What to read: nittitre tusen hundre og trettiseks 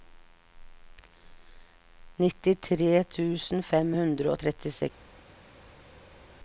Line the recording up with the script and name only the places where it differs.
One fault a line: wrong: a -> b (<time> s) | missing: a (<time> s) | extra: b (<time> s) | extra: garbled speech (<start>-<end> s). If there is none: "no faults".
extra: fem (3.7 s)